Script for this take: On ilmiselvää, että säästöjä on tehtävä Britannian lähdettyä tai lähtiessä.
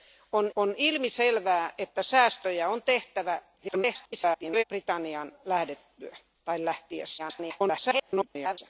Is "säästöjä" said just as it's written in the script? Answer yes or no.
yes